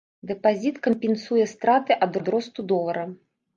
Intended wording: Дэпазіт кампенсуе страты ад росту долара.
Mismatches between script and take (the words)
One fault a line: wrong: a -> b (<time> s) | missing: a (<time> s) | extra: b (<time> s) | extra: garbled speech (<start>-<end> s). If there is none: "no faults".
extra: ад (2.2 s)